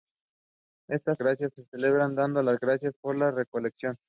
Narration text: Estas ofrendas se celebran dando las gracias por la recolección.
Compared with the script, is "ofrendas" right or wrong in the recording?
wrong